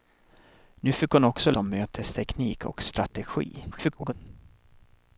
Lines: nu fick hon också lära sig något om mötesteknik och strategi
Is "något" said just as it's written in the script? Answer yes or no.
no